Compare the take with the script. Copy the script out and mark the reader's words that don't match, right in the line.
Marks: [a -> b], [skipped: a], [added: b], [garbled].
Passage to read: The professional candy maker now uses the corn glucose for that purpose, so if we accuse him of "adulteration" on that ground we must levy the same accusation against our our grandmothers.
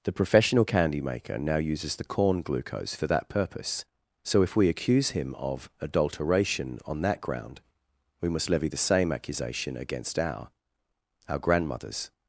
The professional candy maker now uses the corn glucose for that purpose, so if we accuse him of "adulteration" on that ground we must levy the same accusation against our our grandmothers.